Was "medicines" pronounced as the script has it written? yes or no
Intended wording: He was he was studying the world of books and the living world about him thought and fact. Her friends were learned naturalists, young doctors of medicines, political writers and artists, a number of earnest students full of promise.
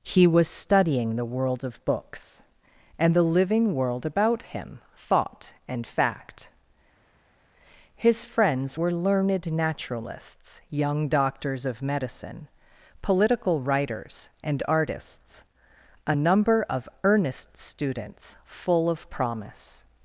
no